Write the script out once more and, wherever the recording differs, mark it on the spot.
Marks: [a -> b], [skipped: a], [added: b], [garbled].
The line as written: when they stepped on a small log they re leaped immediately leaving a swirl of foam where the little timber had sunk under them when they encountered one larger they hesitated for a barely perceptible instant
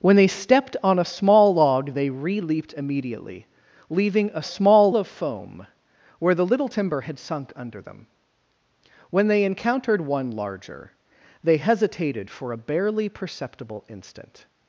when they stepped on a small log they re leaped immediately leaving a [swirl -> small] of foam where the little timber had sunk under them when they encountered one larger they hesitated for a barely perceptible instant